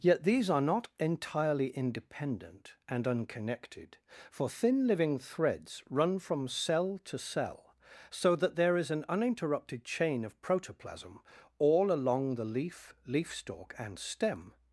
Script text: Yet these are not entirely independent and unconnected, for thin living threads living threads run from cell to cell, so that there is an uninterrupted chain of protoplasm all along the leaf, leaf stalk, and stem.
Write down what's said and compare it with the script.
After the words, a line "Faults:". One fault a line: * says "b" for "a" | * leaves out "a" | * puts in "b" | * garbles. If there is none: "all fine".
Yet these are not entirely independent and unconnected, for thin living threads run from cell to cell, so that there is an uninterrupted chain of protoplasm all along the leaf, leaf stalk, and stem.
Faults:
* leaves out "living threads"